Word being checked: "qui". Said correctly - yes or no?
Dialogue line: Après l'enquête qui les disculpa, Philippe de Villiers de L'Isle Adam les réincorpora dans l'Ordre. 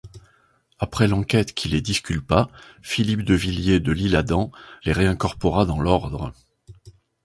yes